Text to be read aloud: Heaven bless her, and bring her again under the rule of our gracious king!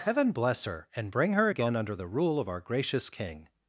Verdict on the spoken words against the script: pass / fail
pass